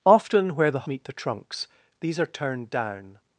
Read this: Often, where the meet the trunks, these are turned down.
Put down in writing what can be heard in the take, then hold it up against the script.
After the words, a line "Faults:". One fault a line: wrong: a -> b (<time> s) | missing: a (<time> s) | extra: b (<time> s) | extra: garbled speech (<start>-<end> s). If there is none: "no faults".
Often, where the meet the trunks, these are turned down.
Faults:
no faults